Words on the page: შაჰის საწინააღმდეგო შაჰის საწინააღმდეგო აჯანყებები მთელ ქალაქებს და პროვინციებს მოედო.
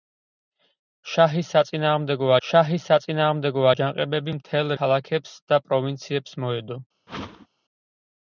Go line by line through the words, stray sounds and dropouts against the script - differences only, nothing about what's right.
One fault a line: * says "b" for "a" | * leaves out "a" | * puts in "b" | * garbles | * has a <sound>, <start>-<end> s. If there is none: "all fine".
* has a whoosh, 7.1-7.5 s